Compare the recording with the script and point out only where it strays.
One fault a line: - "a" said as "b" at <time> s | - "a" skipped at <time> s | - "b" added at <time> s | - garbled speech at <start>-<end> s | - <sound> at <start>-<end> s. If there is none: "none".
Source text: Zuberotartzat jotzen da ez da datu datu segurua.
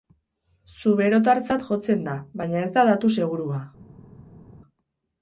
- "baina" added at 2.4 s
- "datu" skipped at 3.2 s